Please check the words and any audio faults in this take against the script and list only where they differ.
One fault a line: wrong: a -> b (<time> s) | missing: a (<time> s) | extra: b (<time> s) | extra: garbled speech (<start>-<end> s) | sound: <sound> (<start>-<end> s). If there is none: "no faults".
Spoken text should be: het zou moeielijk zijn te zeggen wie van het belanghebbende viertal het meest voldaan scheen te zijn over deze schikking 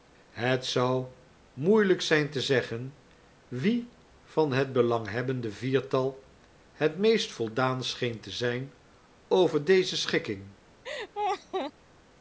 sound: laugh (10.8-11.7 s)